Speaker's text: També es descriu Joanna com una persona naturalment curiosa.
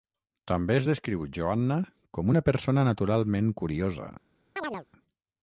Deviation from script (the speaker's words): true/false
false